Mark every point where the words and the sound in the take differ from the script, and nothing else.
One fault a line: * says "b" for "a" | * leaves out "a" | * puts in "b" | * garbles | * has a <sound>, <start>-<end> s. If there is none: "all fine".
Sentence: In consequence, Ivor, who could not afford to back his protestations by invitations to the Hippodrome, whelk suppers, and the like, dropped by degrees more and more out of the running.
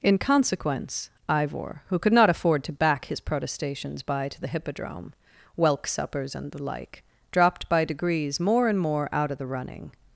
* leaves out "invitations"